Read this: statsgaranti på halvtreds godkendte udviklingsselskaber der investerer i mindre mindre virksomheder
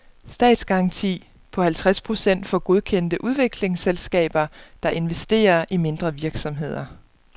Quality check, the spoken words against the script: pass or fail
fail